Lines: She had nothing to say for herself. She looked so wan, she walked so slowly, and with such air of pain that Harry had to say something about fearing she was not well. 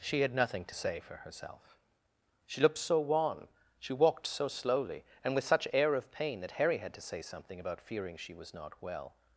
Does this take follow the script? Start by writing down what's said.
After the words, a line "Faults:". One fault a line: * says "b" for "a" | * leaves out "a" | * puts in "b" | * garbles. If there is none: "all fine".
She had nothing to say for herself. She looked so wan, she walked so slowly, and with such air of pain that Harry had to say something about fearing she was not well.
Faults:
all fine